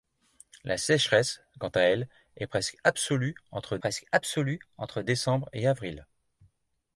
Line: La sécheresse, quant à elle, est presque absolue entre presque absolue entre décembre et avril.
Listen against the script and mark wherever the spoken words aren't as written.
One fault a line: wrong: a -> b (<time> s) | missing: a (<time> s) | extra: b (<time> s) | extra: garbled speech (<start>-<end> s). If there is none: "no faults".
no faults